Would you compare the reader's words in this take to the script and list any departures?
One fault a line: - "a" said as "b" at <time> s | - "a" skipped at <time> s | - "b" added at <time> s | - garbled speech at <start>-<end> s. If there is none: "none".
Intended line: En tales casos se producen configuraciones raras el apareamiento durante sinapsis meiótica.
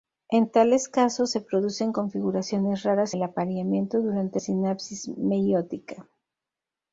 none